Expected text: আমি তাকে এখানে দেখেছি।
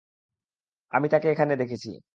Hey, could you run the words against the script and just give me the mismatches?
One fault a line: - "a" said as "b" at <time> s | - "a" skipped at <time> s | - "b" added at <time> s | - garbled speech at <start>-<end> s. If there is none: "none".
none